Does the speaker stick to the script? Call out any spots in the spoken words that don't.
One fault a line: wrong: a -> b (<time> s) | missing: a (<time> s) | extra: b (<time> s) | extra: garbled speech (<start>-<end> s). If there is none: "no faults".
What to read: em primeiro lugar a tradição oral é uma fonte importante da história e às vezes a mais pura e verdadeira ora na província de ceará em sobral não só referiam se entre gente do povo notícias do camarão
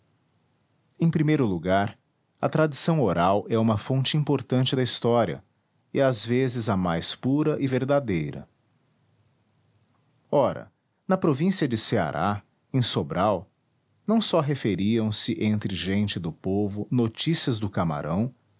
no faults